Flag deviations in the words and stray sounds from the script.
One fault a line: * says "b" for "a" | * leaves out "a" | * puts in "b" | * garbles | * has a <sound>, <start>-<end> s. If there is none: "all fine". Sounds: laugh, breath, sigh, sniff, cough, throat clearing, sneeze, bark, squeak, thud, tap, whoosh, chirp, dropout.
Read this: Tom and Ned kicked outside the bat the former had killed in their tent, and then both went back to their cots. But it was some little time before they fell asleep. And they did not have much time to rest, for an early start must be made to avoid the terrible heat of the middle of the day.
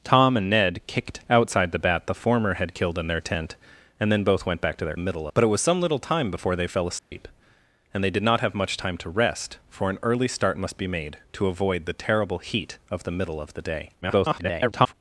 * says "middle" for "cots"
* has a dropout, 7.0-7.1 s
* garbles